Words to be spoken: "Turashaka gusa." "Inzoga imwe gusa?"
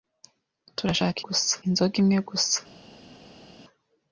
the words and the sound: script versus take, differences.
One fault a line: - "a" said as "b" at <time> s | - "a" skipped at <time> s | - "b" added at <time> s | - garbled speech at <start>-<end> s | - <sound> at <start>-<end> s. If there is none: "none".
none